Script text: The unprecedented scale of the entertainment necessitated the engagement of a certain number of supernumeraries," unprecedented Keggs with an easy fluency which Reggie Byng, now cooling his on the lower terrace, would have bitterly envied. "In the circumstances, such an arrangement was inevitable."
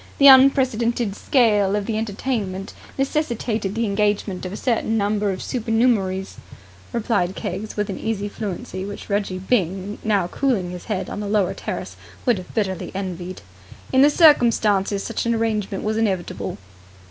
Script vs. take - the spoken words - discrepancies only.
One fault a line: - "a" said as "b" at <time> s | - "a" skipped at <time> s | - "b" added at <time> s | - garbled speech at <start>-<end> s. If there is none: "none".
- "unprecedented" said as "replied" at 6.9 s
- "head" added at 10.9 s